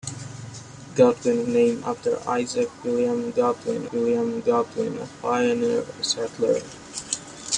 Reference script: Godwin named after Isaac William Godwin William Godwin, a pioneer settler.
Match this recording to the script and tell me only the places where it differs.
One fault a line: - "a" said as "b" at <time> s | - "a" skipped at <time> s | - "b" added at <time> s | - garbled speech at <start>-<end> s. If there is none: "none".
none